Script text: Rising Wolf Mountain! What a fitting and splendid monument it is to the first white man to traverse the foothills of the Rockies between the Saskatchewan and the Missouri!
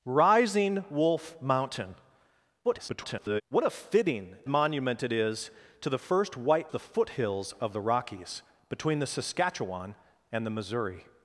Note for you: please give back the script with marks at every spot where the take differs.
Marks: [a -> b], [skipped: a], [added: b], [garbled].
Rising Wolf Mountain! [garbled] What a fitting [skipped: and splendid] monument it is to the first white [skipped: man to traverse] the foothills of the Rockies between the Saskatchewan and the Missouri!